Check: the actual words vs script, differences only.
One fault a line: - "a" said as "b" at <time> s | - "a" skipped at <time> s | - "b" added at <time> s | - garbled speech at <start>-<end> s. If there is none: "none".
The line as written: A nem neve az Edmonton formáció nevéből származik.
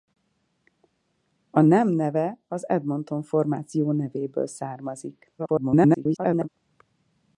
- garbled speech at 5.4-6.5 s